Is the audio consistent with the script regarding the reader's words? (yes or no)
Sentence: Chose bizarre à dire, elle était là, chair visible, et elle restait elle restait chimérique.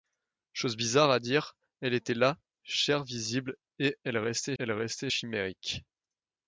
yes